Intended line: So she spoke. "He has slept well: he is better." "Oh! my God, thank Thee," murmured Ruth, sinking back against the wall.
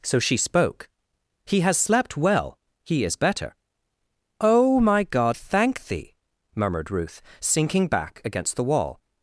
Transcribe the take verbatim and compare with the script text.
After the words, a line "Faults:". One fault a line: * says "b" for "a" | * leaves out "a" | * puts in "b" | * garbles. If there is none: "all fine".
So she spoke. "He has slept well: he is better." "Oh! my God, thank Thee," murmured Ruth, sinking back against the wall.
Faults:
all fine